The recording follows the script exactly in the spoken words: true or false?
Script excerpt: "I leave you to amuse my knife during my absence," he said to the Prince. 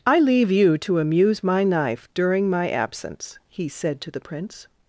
true